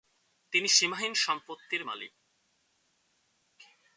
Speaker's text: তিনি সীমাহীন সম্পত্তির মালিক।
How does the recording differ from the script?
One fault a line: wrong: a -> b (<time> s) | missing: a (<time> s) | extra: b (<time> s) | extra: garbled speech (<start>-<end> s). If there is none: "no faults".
no faults